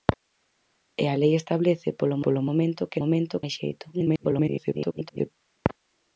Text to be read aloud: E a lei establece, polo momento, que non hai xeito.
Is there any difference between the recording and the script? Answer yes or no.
yes